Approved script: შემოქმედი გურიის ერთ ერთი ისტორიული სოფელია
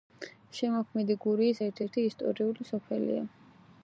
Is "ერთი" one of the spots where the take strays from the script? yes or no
no